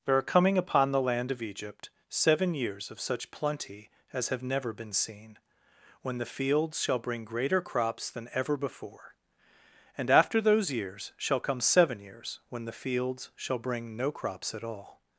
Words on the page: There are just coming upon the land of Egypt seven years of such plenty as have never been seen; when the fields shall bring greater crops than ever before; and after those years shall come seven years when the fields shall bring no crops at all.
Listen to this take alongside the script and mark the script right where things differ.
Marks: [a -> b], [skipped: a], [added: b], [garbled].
There are [skipped: just] coming upon the land of Egypt seven years of such plenty as have never been seen; when the fields shall bring greater crops than ever before; and after those years shall come seven years when the fields shall bring no crops at all.